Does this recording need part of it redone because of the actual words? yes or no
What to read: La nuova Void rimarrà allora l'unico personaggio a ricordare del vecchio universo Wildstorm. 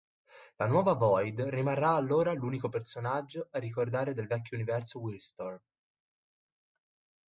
no